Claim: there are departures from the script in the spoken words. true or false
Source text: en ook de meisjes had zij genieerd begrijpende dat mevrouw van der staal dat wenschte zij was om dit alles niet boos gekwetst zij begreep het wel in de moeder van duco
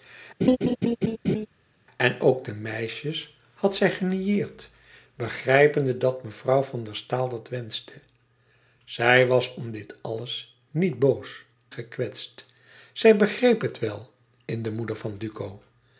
false